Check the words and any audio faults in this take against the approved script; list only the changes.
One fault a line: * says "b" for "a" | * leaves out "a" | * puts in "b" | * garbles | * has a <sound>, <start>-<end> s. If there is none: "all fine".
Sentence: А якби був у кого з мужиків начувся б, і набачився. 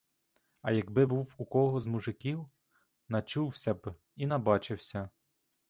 all fine